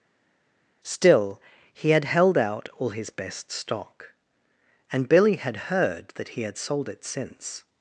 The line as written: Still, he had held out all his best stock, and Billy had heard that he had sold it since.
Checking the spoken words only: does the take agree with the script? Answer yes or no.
yes